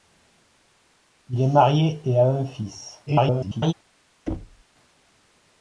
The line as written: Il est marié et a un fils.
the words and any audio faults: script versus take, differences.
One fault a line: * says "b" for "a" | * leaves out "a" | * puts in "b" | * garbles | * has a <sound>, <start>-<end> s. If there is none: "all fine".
* garbles
* has a thud, 4.3-4.6 s